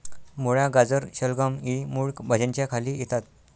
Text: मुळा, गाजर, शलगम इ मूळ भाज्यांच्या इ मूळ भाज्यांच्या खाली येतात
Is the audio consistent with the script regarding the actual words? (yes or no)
no